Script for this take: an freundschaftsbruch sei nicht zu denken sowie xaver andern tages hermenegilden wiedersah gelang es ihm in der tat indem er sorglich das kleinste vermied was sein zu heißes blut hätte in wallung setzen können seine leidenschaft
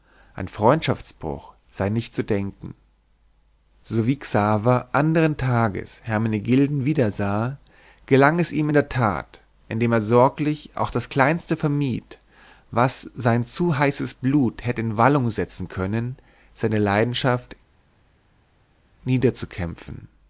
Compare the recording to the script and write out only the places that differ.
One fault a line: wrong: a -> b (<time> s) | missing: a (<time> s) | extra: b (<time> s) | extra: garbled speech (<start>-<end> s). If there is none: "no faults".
extra: auch (10.8 s)